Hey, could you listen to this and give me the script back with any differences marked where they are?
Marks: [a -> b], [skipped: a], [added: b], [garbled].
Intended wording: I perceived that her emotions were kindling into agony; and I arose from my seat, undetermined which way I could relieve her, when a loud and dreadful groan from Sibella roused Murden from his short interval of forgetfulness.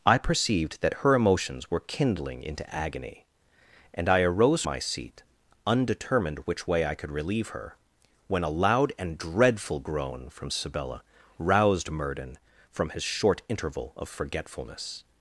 I perceived that her emotions were kindling into agony; and I arose [skipped: from] my seat, undetermined which way I could relieve her, when a loud and dreadful groan from Sibella roused Murden from his short interval of forgetfulness.